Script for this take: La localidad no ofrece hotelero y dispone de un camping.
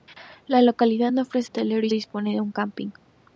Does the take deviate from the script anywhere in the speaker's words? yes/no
no